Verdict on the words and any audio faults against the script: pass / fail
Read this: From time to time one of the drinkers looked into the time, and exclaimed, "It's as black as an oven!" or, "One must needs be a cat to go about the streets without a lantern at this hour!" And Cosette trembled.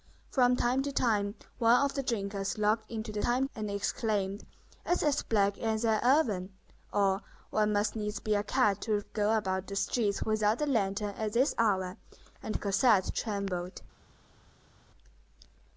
pass